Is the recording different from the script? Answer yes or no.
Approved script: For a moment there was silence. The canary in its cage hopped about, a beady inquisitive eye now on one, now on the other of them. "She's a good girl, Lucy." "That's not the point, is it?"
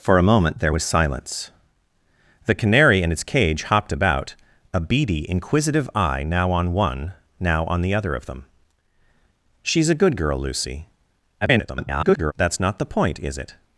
yes